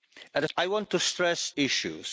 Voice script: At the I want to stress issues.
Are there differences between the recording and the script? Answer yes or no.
no